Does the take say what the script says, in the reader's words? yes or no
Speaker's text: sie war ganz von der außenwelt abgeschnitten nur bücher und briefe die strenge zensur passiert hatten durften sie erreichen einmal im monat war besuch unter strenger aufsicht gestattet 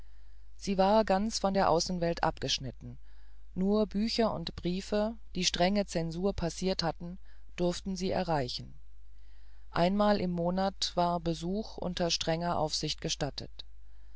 yes